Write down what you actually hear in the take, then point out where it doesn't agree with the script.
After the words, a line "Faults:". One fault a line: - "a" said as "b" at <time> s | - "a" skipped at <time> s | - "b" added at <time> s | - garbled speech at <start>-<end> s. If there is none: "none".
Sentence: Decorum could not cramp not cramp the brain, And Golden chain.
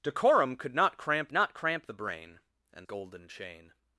Decorum could not cramp not cramp the brain, And Golden chain.
Faults:
none